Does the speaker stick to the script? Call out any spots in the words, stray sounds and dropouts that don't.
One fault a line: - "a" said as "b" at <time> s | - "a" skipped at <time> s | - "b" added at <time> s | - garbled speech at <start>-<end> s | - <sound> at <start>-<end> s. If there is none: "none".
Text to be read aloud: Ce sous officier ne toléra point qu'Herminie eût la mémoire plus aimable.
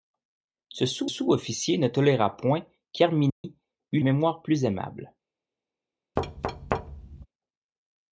- "sous" added at 1.1 s
- dropout at 3.3-3.4 s
- "la" skipped at 4.0 s
- thud at 6.2-7.3 s